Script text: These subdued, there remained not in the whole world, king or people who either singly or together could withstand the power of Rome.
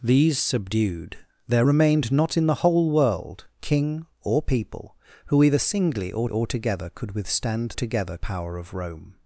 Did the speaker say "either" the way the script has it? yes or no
yes